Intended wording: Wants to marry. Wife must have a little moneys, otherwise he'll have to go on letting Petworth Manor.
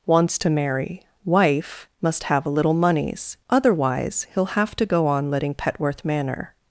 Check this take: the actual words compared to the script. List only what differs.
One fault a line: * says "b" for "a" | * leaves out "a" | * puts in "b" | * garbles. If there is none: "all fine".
all fine